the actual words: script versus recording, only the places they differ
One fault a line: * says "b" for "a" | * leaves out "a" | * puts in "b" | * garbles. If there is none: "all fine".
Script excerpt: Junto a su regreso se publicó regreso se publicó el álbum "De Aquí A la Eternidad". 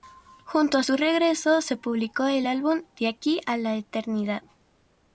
* leaves out "regreso se publicó"